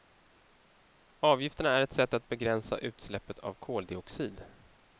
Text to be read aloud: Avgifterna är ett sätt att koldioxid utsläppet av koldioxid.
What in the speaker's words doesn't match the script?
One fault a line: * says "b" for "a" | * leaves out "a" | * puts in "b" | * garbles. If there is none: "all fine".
* says "begränsa" for "koldioxid"